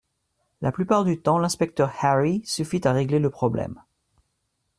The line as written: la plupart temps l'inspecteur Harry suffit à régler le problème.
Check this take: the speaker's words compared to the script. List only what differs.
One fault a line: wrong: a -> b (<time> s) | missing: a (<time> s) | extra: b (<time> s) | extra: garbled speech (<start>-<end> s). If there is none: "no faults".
extra: du (1.0 s)